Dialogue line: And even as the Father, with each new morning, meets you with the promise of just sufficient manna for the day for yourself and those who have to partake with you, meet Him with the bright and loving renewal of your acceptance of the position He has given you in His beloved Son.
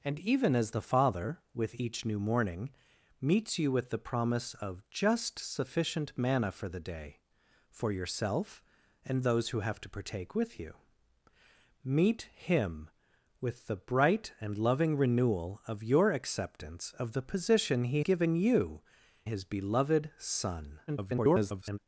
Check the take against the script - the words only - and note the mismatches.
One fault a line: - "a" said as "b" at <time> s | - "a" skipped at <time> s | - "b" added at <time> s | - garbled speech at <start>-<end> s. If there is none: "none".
- "has" skipped at 18.0 s
- "in" skipped at 18.8 s
- garbled speech at 20.9-21.8 s